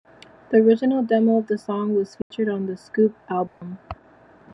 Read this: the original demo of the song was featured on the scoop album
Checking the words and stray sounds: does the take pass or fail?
fail